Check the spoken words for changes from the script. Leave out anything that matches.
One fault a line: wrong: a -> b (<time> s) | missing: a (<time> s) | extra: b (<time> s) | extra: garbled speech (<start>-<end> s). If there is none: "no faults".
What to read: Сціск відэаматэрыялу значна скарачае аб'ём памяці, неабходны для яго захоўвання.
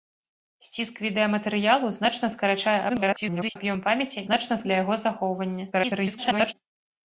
extra: garbled speech (2.9-3.6 s)
wrong: неабходны -> значна (4.3 s)
extra: garbled speech (5.7-6.5 s)